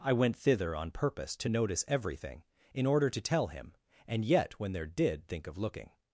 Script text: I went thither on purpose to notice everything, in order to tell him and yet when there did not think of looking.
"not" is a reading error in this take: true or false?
true